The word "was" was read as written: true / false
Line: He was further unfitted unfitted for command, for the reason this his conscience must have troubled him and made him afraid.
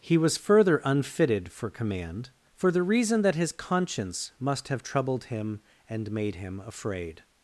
true